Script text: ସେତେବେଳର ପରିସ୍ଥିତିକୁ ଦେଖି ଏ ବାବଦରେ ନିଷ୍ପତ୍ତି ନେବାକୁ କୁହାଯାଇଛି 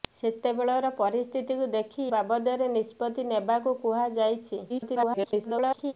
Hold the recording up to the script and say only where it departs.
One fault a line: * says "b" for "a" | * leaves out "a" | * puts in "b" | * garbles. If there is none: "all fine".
* leaves out "ଏ"
* garbles